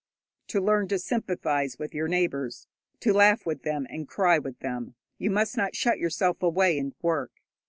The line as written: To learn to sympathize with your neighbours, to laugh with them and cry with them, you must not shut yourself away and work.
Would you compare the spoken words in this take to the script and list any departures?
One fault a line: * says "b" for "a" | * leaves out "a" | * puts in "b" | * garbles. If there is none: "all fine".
all fine